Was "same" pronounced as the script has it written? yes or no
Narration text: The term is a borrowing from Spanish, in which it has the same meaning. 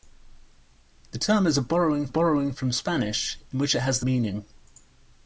no